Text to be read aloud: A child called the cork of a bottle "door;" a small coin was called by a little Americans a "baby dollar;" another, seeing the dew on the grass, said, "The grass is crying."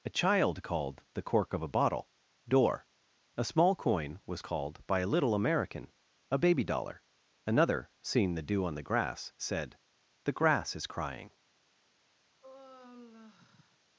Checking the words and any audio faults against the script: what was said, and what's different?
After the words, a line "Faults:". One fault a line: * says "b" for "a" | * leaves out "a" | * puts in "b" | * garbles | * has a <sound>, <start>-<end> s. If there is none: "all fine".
A child called the cork of a bottle "door;" a small coin was called by a little American a "baby dollar;" another, seeing the dew on the grass, said, "The grass is crying."
Faults:
* says "American" for "Americans"
* has a sigh, 12.4-13.8 s